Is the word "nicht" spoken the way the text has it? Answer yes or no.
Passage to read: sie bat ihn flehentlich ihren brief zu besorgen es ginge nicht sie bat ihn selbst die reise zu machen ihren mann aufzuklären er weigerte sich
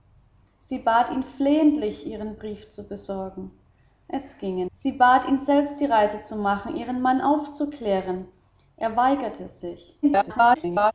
no